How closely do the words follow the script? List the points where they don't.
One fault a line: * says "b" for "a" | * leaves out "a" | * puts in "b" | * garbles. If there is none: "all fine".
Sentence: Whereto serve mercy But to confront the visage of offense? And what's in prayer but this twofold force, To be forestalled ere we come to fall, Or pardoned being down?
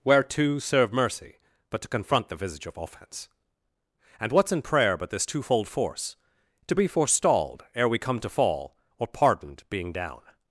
all fine